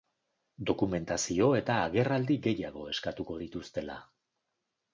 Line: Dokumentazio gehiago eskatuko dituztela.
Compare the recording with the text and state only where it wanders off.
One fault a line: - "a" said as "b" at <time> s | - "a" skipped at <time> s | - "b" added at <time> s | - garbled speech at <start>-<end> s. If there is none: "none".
- "eta agerraldi" added at 1.6 s